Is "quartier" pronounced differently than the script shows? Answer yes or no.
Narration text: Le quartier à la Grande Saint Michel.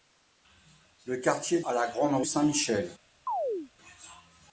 no